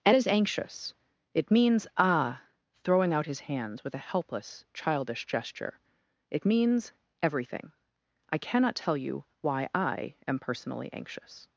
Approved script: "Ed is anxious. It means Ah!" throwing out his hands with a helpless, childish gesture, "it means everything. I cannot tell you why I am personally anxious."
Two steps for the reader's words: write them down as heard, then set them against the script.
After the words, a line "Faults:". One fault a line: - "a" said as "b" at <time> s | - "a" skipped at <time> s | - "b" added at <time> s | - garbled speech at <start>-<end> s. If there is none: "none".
"Ed is anxious. It means Ah!" throwing out his hands with a helpless, childish gesture, "it means everything. I cannot tell you why I am personally anxious."
Faults:
none